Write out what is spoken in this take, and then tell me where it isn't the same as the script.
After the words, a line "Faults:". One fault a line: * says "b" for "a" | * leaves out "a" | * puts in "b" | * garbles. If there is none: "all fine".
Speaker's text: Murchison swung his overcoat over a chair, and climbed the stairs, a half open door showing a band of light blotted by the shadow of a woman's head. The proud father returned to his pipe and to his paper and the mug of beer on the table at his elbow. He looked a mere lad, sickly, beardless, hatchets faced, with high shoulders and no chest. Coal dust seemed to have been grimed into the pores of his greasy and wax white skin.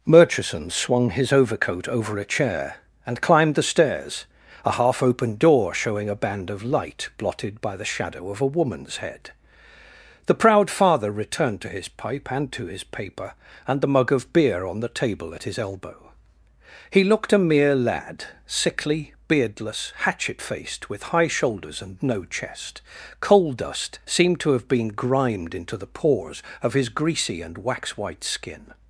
Murchison swung his overcoat over a chair, and climbed the stairs, a half open door showing a band of light blotted by the shadow of a woman's head. The proud father returned to his pipe and to his paper and the mug of beer on the table at his elbow. He looked a mere lad, sickly, beardless, hatchet faced, with high shoulders and no chest. Coal dust seemed to have been grimed into the pores of his greasy and wax white skin.
Faults:
* says "hatchet" for "hatchets"